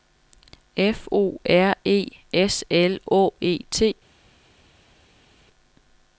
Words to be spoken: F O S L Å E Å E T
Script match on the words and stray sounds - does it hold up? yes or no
no